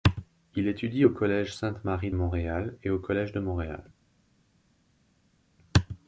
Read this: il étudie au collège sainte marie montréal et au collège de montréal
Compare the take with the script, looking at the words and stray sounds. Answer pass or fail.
pass